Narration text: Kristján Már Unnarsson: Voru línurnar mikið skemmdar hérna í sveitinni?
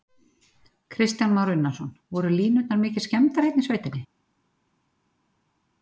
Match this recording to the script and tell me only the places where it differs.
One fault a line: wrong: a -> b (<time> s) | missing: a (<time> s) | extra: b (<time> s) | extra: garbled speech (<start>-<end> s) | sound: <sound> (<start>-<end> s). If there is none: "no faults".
no faults